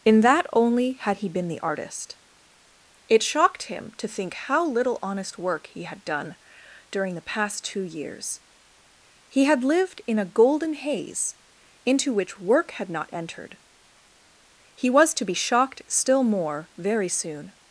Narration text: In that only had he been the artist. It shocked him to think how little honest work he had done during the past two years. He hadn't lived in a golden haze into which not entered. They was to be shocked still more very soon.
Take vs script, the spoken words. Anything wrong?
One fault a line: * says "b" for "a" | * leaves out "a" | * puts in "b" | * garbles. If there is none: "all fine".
* says "had" for "hadn't"
* puts in "work had"
* says "He" for "They"